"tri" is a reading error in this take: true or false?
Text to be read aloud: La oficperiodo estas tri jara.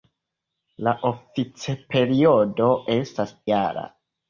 true